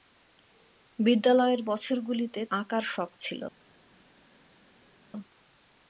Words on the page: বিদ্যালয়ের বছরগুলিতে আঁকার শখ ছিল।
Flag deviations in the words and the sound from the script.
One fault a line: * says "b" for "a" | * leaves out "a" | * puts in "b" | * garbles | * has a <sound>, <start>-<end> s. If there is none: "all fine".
all fine